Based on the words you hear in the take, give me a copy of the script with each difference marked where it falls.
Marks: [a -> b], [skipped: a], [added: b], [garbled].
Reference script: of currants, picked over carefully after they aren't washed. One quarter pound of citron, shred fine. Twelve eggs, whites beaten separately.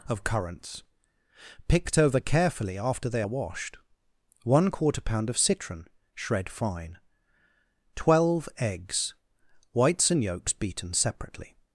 of currants, picked over carefully after they [aren't -> are] washed. One quarter pound of citron, shred fine. Twelve eggs, whites [added: and yolks] beaten separately.